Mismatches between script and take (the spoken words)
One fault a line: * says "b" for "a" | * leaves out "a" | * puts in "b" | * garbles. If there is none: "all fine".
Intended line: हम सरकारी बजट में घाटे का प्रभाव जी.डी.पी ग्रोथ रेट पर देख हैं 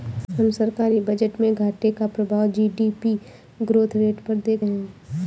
all fine